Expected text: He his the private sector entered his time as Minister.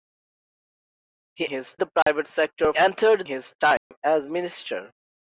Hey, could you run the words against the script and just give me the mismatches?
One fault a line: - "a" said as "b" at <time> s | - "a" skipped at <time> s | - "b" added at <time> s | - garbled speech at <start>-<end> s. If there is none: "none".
none